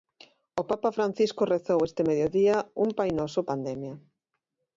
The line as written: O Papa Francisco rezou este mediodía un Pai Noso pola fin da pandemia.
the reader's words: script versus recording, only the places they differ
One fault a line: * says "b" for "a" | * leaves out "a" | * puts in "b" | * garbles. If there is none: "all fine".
* leaves out "pola fin da"